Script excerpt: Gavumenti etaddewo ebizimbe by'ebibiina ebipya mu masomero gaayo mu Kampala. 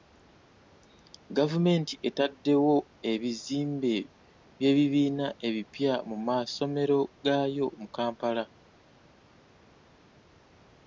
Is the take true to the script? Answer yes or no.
yes